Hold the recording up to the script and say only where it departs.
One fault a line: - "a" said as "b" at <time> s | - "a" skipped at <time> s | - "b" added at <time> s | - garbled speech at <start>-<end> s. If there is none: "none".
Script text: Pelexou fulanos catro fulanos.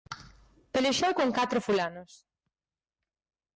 - "fulanos" said as "con" at 1.2 s